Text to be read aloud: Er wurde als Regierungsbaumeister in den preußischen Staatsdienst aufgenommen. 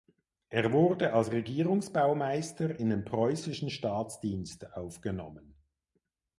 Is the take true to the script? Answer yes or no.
yes